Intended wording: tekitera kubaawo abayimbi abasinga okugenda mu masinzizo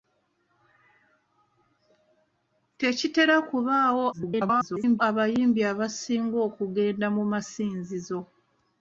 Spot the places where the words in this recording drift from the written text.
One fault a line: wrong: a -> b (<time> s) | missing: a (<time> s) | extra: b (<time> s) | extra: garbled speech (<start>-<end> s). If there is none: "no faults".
extra: garbled speech (4.1-5.0 s)